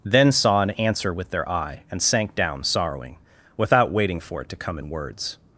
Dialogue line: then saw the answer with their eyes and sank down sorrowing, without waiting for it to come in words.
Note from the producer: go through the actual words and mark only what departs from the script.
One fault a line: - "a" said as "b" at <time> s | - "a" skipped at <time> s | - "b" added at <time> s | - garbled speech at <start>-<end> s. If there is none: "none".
- "the" said as "an" at 0.6 s
- "eyes" said as "eye" at 1.5 s